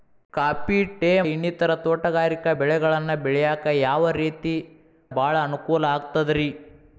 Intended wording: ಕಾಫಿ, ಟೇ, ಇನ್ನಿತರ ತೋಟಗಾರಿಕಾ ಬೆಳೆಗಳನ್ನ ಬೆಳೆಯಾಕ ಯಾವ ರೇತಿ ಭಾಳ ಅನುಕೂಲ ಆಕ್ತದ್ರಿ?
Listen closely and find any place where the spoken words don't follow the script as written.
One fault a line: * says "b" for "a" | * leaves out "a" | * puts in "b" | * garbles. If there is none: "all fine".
all fine